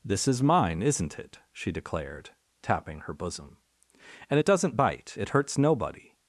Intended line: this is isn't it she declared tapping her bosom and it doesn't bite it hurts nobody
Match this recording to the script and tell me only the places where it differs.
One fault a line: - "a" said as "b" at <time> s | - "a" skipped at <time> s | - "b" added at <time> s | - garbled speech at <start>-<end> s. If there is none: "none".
- "mine" added at 0.4 s